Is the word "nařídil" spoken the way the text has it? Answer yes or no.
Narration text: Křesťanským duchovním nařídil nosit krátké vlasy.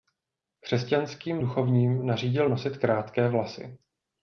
yes